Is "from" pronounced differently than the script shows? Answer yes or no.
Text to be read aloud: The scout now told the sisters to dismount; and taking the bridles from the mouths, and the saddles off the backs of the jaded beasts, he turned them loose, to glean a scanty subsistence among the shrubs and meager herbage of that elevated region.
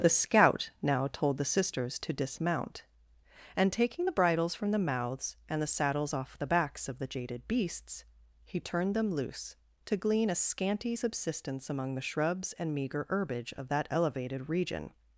no